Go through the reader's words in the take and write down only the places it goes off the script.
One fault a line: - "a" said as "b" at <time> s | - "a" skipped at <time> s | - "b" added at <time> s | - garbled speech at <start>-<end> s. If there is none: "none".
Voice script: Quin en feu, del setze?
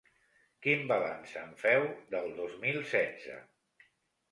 - "balanç" added at 0.9 s
- "dos mil" added at 2.4 s